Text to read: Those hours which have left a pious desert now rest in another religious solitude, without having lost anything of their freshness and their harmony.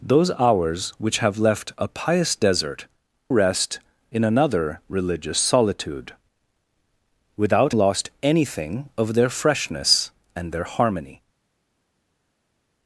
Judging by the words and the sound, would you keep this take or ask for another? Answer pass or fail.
fail